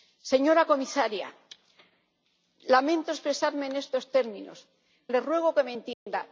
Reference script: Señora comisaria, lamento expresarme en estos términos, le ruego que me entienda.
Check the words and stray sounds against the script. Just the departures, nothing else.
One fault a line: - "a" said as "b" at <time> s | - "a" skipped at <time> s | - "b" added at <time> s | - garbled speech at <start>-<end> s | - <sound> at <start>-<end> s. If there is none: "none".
- dropout at 5.9-6.1 s